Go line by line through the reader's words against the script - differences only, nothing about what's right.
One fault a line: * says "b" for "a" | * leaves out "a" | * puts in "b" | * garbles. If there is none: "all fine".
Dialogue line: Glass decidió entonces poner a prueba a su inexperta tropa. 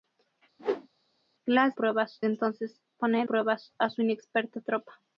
* says "prueba" for "decidió"
* leaves out "a"